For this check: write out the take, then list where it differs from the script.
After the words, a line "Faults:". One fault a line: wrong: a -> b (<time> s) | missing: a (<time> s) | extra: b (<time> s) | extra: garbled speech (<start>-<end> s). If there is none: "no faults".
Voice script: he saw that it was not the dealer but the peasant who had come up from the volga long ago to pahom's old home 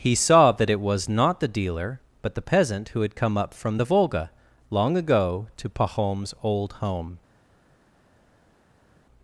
he saw that it was not the dealer but the peasant who had come up from the volga long ago to pahom's old home
Faults:
no faults